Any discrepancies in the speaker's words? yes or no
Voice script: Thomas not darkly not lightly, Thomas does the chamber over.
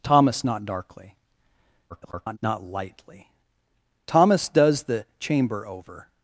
yes